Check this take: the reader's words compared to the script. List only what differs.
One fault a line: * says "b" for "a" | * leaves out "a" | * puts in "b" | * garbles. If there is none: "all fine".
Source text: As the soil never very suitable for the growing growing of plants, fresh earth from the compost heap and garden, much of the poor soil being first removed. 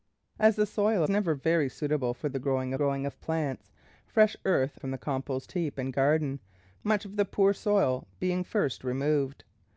all fine